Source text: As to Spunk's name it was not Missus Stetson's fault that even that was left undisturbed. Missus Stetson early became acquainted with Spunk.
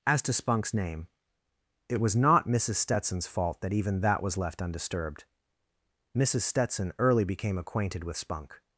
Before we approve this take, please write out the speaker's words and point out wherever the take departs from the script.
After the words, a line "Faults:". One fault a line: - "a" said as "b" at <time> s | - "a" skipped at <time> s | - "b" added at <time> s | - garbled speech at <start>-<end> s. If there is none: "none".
As to Spunk's name it was not Missus Stetson's fault that even that was left undisturbed. Missus Stetson early became acquainted with Spunk.
Faults:
none